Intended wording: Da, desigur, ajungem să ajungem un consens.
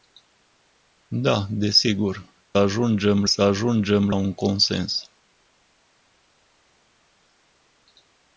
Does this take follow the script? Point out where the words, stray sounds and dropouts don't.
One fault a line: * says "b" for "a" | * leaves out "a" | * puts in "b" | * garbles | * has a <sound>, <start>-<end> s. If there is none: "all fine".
all fine